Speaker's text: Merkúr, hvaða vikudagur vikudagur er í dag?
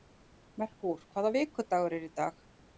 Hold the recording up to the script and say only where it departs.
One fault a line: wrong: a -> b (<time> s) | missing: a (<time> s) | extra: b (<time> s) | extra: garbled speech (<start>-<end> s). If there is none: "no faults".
missing: vikudagur (2.0 s)